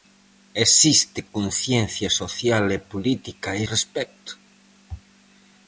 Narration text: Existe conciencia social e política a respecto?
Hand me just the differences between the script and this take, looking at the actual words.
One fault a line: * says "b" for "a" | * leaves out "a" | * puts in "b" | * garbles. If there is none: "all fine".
all fine